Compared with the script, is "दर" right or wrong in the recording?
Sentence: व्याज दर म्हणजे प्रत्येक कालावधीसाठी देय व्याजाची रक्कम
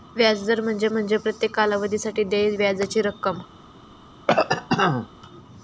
right